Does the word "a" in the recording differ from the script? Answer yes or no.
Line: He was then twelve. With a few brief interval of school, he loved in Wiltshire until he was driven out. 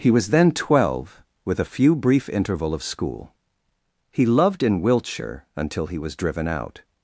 no